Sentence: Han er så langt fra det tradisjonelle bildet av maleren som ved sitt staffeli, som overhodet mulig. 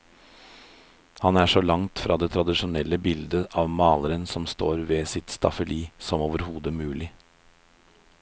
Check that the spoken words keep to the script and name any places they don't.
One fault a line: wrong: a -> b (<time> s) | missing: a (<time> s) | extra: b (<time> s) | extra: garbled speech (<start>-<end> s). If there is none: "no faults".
extra: står (4.5 s)